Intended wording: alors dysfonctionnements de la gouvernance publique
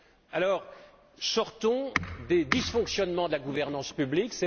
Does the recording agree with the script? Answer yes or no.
no